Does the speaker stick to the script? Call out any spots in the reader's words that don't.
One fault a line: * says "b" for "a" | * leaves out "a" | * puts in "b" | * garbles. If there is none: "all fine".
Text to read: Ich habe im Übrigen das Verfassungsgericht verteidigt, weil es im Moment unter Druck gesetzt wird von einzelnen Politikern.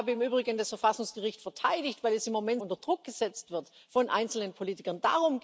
all fine